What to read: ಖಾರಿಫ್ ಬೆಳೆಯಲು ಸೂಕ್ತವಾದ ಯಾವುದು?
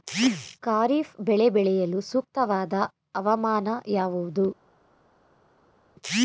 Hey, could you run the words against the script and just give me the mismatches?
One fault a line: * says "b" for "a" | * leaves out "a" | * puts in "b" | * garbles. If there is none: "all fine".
* puts in "ಬೆಳೆ"
* puts in "ಹವಾಮಾನ"